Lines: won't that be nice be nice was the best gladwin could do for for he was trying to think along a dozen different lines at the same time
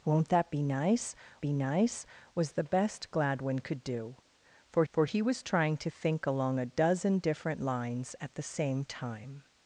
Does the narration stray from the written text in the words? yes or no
no